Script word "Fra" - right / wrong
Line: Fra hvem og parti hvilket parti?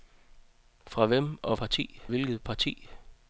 right